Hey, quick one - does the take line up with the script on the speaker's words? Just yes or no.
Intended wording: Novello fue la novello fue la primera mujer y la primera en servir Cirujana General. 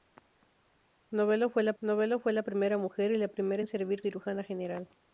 yes